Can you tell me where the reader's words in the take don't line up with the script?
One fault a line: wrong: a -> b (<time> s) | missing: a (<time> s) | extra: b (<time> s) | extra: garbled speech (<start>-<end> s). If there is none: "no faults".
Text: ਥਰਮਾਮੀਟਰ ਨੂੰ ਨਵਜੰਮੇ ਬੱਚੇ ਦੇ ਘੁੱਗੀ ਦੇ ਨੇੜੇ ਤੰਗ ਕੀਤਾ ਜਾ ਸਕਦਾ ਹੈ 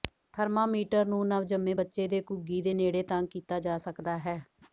no faults